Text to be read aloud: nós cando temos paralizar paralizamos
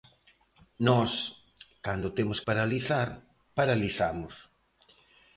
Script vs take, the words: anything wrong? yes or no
no